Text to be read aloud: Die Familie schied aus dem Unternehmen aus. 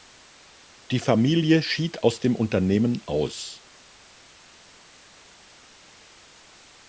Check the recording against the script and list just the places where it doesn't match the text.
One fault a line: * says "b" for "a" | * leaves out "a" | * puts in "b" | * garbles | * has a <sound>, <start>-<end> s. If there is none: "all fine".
all fine